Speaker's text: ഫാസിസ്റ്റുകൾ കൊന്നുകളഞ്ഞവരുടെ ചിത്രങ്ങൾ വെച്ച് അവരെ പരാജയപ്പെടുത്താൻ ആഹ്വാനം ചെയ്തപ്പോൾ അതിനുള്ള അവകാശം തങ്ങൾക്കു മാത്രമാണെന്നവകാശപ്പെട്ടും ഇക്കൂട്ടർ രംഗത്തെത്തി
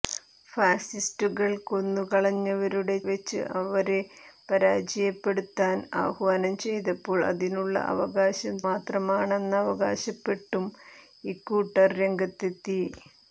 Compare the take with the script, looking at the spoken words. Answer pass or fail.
fail